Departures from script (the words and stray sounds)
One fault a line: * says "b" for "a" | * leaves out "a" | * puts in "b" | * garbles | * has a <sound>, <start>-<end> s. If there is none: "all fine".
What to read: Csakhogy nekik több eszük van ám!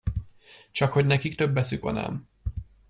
all fine